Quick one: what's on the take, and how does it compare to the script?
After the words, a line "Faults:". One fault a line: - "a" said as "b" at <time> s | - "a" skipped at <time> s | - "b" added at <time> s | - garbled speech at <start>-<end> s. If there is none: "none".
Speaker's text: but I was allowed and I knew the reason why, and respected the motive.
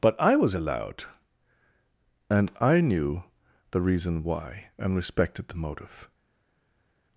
but I was allowed and I knew the reason why, and respected the motive.
Faults:
none